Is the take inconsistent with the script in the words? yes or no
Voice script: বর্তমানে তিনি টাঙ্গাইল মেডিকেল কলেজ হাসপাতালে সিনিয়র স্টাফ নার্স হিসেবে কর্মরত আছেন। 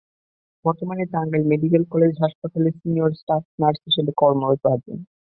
yes